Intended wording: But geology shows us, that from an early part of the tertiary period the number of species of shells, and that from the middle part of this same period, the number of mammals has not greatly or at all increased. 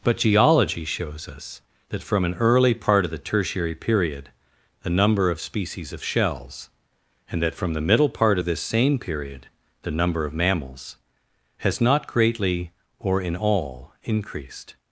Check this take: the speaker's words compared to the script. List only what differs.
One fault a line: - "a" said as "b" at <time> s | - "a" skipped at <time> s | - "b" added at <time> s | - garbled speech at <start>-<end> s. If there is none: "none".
- "at" said as "in" at 13.2 s